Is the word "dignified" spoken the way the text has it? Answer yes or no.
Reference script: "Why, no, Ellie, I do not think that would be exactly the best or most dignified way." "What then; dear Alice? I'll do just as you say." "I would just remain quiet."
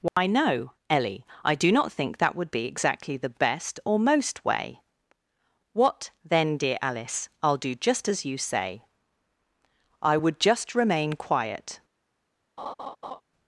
no